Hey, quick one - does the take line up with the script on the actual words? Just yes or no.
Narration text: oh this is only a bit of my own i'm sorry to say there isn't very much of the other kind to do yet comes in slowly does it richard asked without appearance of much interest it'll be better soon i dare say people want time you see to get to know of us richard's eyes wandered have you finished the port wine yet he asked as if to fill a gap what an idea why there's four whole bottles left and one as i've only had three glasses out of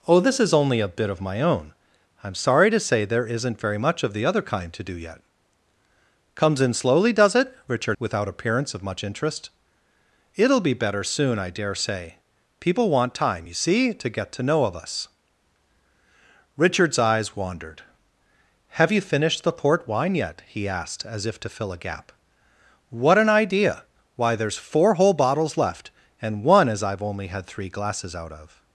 no